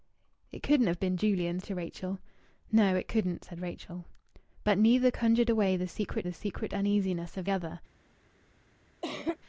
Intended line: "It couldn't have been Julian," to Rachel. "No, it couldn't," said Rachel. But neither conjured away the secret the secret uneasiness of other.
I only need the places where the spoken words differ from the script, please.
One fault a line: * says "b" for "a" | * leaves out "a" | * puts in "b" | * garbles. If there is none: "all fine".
all fine